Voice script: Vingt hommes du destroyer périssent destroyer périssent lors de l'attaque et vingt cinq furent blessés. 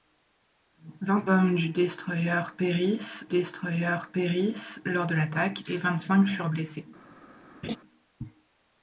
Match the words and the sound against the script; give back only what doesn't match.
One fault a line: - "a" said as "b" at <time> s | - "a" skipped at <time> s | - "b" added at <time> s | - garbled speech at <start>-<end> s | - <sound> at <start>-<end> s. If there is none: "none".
- laugh at 7.6-7.8 s